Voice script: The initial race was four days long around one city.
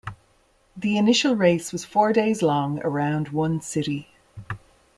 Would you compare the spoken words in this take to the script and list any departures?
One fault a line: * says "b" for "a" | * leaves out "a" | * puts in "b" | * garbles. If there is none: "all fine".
all fine